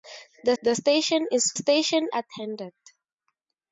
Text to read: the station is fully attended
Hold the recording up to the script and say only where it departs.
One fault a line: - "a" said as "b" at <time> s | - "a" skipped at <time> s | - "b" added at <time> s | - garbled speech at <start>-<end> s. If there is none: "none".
- "the" added at 0.6 s
- "fully" said as "station" at 1.5 s